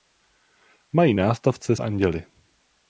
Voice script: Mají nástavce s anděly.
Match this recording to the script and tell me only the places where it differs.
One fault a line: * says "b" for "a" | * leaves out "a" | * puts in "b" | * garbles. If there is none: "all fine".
* leaves out "s"